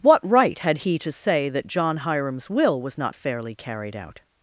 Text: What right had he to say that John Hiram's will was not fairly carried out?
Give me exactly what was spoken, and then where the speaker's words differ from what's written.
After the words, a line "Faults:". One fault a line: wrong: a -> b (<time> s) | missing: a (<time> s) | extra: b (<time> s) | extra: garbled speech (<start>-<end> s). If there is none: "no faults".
What right had he to say that John Hiram's will was not fairly carried out?
Faults:
no faults